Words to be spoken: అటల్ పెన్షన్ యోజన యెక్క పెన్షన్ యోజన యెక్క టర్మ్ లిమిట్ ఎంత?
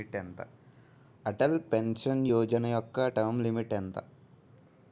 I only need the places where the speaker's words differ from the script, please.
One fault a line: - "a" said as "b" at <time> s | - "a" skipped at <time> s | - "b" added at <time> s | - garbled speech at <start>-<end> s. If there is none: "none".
- "పెన్షన్ యోజన యెక్క" skipped at 3.1 s